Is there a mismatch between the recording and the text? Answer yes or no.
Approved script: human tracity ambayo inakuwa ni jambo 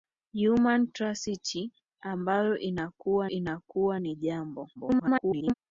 yes